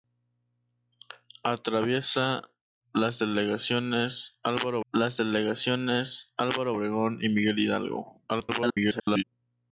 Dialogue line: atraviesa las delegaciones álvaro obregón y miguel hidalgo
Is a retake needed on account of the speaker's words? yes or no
yes